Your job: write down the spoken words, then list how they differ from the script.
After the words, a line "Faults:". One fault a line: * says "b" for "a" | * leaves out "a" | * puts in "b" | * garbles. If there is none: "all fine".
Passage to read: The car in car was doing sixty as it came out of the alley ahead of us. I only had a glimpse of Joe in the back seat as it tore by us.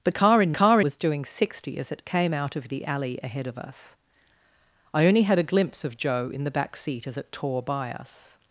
The car in car was doing sixty as it came out of the alley ahead of us. I only had a glimpse of Joe in the back seat as it tore by us.
Faults:
all fine